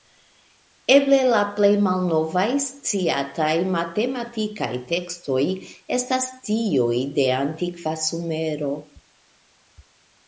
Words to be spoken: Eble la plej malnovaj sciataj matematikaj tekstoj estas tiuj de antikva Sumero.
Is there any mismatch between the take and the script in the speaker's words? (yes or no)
no